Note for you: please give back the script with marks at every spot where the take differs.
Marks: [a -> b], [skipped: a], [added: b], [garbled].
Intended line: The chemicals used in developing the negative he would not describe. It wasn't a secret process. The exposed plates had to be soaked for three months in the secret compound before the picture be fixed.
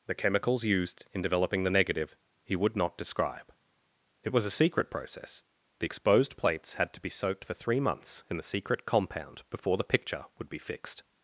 The chemicals used in developing the negative he would not describe. It [wasn't -> was] a secret process. The exposed plates had to be soaked for three months in the secret compound before the picture [added: would] be fixed.